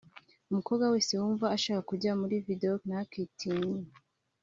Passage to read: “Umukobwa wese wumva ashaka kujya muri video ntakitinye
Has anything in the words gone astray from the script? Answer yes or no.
no